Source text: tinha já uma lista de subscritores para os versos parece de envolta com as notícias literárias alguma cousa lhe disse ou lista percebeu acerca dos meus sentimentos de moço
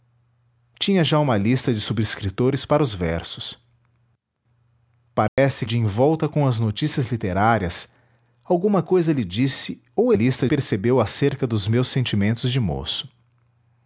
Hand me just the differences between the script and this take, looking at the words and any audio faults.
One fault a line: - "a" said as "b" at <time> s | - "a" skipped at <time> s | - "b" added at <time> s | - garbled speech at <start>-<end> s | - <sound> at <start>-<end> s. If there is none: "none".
- dropout at 5.3-5.4 s